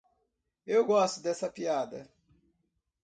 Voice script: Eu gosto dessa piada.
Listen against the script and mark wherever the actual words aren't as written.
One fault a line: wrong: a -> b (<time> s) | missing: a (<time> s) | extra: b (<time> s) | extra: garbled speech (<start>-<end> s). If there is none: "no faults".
no faults